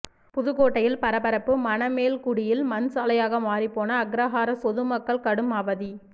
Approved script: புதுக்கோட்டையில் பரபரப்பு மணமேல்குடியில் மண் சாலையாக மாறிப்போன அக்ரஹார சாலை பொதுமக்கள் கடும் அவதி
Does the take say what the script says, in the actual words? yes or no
no